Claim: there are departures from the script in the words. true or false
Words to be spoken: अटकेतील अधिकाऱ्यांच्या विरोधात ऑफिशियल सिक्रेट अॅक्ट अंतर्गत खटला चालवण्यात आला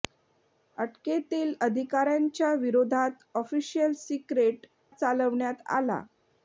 true